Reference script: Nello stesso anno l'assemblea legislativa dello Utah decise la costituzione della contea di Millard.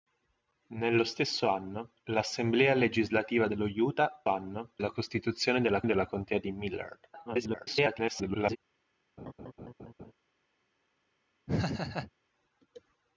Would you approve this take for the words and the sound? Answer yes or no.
no